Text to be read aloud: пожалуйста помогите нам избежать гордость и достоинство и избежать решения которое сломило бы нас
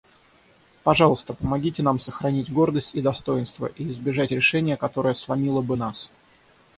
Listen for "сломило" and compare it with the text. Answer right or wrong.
right